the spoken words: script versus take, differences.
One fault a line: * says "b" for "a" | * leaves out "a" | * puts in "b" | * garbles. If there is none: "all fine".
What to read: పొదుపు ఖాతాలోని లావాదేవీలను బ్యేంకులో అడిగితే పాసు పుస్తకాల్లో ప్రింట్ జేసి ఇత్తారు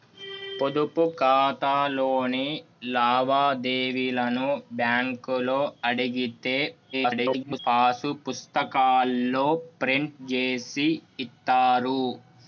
* garbles